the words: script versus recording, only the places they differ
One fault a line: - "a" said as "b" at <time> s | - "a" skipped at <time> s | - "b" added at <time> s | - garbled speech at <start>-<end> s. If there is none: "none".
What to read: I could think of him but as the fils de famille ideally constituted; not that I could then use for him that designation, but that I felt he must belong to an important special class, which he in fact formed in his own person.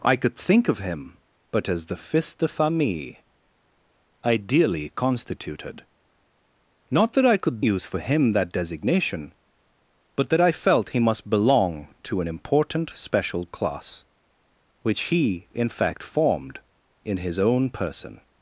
- "then" skipped at 7.6 s